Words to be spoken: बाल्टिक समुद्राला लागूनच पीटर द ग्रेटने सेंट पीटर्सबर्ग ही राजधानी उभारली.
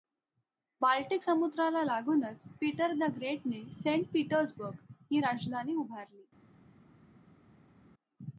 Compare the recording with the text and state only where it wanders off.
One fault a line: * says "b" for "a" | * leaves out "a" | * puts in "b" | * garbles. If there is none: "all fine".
all fine